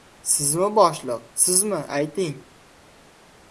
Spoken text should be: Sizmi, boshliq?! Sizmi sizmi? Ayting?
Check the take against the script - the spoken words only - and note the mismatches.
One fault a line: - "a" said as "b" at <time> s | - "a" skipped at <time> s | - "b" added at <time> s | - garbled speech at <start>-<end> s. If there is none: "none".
- "sizmi" skipped at 1.8 s